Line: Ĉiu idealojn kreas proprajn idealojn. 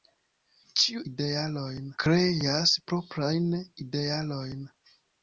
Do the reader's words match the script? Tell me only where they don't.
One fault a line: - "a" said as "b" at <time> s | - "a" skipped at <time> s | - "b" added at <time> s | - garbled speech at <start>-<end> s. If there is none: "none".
none